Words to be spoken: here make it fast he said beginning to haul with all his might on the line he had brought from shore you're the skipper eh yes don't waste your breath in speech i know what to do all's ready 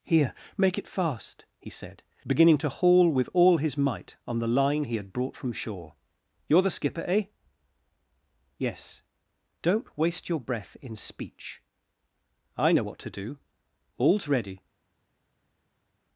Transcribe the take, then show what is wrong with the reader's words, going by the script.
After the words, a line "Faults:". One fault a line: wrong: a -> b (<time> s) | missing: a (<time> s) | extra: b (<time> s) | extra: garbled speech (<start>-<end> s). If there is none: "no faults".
here make it fast he said beginning to haul with all his might on the line he had brought from shore you're the skipper eh yes don't waste your breath in speech i know what to do all's ready
Faults:
no faults